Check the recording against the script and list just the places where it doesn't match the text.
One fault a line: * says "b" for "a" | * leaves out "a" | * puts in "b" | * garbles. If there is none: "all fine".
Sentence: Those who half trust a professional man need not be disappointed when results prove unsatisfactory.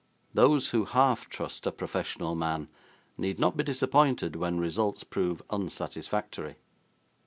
all fine